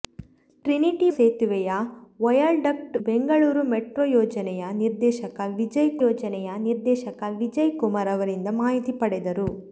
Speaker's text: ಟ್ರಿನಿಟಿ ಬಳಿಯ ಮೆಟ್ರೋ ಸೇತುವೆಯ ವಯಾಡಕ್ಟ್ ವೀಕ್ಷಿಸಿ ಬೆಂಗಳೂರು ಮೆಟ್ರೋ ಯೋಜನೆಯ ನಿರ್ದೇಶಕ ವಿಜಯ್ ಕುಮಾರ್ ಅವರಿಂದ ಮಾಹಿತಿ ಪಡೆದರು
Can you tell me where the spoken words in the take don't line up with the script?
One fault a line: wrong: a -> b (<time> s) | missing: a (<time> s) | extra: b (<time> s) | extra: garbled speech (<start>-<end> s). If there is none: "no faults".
missing: ಬಳಿಯ ಮೆಟ್ರೋ (1.1 s)
missing: ವೀಕ್ಷಿಸಿ (3.0 s)
extra: ಯೋಜನೆಯ ನಿರ್ದೇಶಕ ವಿಜಯ್ (6.0 s)